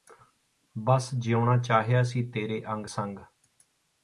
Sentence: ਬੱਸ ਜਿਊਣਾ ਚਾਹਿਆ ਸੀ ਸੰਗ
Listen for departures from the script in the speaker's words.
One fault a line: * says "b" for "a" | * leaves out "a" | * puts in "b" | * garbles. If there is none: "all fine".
* puts in "ਤੇਰੇ ਅੰਗ"